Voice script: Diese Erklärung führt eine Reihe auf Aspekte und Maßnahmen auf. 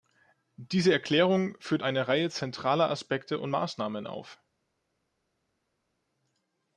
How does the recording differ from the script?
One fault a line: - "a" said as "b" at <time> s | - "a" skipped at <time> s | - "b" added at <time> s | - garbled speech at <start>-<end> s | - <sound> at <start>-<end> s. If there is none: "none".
- "auf" said as "zentraler" at 2.3 s